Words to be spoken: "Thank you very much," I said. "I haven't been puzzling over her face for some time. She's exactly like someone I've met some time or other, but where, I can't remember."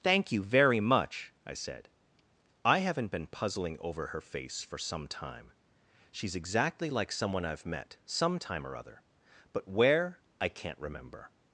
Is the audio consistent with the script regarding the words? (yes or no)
yes